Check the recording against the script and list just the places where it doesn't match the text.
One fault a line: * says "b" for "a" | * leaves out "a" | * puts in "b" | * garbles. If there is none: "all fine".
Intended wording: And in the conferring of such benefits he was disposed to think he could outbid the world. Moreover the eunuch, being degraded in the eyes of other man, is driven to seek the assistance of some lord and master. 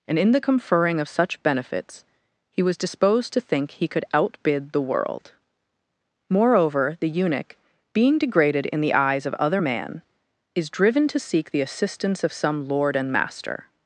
all fine